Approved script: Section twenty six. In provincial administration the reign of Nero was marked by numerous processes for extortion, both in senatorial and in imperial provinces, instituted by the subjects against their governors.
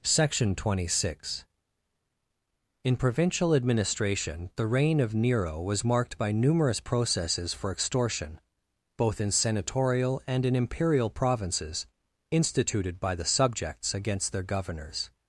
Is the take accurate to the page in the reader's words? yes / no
yes